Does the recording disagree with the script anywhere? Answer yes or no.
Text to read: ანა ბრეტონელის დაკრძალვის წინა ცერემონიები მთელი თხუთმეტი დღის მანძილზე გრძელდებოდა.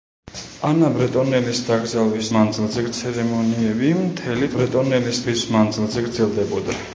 yes